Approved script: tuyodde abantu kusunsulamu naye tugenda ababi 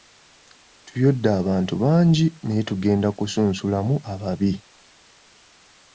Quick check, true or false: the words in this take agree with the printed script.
false